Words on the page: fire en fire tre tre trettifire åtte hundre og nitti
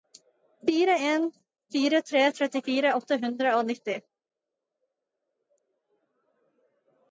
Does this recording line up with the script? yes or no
no